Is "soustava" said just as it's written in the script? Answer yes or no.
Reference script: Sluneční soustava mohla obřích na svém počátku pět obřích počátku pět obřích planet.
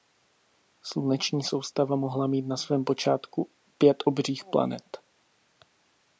yes